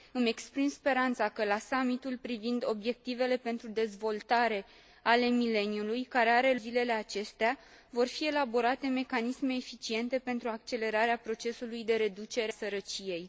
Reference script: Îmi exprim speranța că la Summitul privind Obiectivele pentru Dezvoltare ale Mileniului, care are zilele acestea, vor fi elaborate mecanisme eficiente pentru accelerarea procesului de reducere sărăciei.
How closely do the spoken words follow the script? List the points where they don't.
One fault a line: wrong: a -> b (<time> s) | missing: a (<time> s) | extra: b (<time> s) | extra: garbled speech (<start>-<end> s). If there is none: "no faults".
no faults